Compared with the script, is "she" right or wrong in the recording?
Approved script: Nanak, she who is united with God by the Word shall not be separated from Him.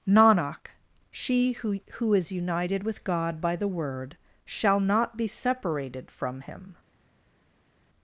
right